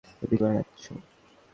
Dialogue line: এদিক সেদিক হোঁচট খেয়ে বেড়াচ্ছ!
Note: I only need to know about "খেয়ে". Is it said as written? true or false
false